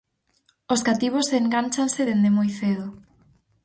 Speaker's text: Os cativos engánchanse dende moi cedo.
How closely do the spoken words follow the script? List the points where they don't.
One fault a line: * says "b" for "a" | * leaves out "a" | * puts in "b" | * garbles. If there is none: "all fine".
all fine